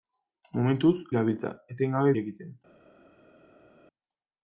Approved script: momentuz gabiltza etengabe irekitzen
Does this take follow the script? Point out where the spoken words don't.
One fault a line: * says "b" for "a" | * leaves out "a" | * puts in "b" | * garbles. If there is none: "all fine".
all fine